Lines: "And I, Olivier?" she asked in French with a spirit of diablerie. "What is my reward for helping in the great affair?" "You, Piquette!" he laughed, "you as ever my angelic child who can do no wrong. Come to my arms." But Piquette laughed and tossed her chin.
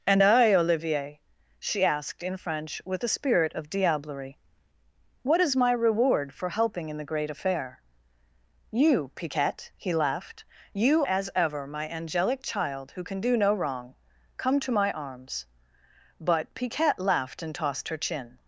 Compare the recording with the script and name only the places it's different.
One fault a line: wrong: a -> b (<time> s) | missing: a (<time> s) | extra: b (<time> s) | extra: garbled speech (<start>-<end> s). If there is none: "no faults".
no faults